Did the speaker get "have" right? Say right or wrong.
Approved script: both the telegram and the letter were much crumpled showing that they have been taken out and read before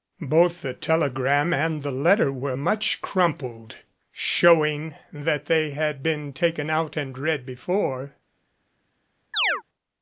wrong